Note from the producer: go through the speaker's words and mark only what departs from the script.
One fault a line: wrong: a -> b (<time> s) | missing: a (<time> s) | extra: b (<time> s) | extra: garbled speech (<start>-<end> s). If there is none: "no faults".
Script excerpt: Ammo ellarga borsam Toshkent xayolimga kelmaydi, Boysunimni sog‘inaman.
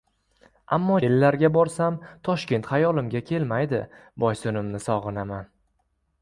no faults